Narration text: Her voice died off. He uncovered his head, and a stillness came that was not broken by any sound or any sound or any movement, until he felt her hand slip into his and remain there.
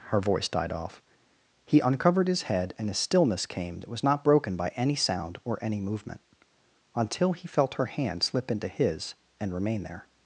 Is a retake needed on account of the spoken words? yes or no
yes